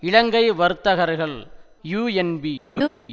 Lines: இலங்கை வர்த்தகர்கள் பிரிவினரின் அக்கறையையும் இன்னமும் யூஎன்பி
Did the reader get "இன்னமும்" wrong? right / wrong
wrong